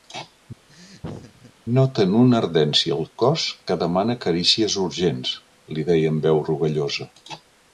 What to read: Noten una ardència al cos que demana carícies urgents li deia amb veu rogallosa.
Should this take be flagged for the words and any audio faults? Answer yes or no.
yes